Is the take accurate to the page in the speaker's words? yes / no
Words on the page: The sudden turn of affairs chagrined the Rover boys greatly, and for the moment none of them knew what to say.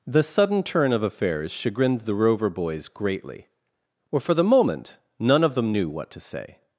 no